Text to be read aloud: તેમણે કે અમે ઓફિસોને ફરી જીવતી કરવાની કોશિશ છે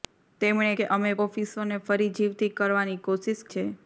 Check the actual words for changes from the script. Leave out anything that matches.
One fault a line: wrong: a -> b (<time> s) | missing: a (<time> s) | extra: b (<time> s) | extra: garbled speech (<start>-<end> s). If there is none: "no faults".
no faults